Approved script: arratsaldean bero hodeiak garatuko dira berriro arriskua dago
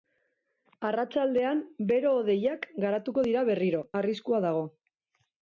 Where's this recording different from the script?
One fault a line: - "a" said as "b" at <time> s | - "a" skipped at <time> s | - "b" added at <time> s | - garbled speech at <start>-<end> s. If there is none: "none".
none